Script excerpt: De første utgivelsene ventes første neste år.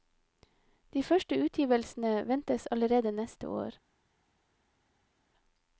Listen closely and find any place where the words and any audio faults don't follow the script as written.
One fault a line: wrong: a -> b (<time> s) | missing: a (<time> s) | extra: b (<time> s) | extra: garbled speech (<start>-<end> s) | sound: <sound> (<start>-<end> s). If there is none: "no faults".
wrong: første -> allerede (2.7 s)